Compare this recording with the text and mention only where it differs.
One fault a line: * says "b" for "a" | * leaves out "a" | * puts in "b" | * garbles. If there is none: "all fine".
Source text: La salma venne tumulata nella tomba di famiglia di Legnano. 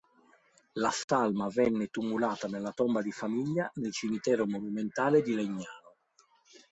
* puts in "nel cimitero monumentale"